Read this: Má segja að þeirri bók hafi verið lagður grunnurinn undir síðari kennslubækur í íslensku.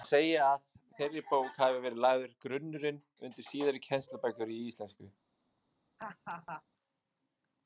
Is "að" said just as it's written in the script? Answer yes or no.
yes